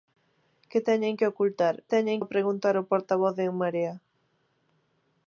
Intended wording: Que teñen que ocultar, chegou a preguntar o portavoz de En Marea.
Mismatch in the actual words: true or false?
true